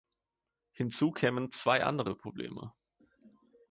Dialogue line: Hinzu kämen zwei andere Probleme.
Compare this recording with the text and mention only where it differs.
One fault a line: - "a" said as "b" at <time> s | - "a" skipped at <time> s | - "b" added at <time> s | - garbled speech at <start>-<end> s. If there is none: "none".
none